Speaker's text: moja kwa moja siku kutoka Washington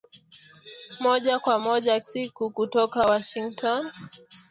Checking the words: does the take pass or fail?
pass